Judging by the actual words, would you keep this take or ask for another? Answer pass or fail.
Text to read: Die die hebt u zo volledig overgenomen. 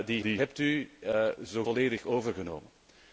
pass